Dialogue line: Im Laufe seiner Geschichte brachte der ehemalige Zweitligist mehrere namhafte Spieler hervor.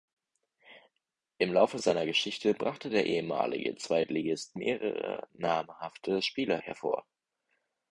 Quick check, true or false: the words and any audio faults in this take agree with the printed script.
true